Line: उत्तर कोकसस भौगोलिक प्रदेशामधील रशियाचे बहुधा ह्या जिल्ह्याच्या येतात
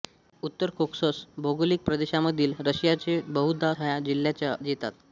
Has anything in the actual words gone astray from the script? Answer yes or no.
no